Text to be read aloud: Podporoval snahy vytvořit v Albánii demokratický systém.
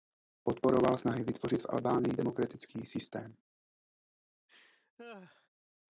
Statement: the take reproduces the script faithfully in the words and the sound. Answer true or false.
false